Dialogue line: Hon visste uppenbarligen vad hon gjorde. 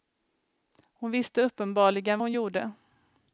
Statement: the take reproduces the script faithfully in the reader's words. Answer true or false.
false